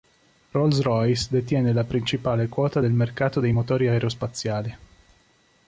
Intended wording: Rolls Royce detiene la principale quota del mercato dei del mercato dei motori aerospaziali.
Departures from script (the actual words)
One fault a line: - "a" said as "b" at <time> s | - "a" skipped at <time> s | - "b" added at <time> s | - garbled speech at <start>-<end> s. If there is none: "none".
- "del mercato dei" skipped at 3.5 s